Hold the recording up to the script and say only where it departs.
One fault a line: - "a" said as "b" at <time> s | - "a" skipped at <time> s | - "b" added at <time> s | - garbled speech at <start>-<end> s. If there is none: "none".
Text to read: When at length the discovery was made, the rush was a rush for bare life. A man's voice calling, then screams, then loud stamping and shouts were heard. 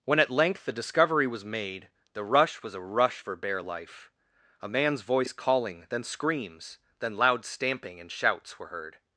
none